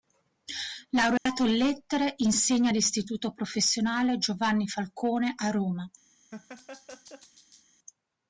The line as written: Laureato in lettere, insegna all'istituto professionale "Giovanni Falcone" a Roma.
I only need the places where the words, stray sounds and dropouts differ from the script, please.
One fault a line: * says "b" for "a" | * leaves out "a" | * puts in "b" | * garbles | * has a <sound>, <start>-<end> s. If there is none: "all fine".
* has a dropout, 1.2-1.3 s
* has a laugh, 6.3-7.6 s